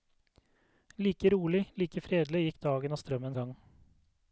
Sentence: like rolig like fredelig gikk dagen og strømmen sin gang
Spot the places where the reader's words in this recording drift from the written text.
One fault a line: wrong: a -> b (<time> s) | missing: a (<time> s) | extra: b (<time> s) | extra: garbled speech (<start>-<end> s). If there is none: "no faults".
missing: sin (3.4 s)